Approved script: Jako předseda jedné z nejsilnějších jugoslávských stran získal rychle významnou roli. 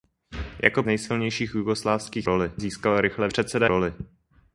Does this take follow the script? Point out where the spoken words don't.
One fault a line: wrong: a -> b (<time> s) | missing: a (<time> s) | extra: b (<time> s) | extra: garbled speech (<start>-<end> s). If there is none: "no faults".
missing: předseda jedné (0.8 s)
wrong: stran -> roli (2.2 s)
wrong: významnou -> předseda (3.3 s)